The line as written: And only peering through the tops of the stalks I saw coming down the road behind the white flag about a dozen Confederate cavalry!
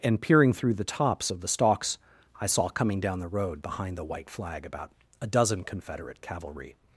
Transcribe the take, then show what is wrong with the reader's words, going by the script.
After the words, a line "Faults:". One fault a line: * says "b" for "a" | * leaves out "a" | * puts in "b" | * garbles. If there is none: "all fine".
And peering through the tops of the stalks I saw coming down the road behind the white flag about a dozen Confederate cavalry!
Faults:
* leaves out "only"